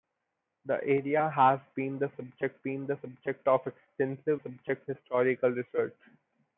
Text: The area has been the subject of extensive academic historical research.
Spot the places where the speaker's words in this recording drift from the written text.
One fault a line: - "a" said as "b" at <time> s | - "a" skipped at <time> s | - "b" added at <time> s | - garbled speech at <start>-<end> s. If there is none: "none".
- "been the subject" added at 2.6 s
- "academic" said as "subject" at 4.4 s